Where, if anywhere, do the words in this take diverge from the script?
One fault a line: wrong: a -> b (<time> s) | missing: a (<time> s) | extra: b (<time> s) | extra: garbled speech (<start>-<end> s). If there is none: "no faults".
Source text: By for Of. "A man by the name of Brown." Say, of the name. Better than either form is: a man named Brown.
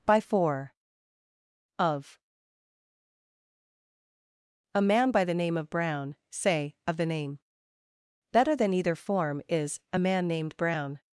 no faults